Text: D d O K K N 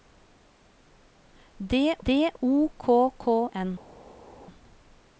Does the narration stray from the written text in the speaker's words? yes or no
no